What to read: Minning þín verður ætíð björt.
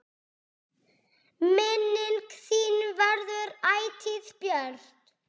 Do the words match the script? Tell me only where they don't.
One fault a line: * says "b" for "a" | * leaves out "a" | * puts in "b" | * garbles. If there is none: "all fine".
all fine